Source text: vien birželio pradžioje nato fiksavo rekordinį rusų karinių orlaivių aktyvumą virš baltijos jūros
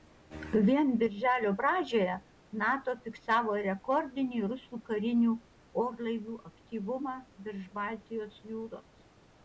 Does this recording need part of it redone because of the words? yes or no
no